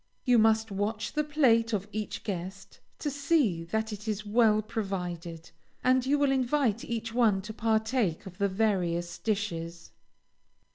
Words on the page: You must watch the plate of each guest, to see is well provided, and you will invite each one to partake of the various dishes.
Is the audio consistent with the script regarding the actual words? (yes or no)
no